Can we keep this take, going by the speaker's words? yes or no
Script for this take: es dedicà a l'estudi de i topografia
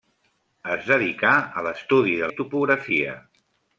yes